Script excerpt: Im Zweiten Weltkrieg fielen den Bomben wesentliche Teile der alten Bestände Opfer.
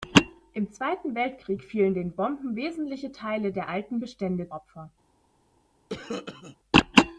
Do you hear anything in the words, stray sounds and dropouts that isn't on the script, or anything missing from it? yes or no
yes